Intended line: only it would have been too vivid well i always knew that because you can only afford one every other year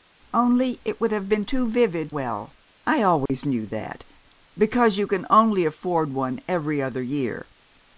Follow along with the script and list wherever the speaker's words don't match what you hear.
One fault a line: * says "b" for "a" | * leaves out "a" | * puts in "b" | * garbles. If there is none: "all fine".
all fine